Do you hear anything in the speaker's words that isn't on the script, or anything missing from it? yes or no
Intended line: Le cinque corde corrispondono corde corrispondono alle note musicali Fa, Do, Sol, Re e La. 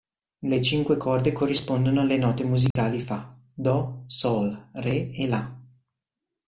yes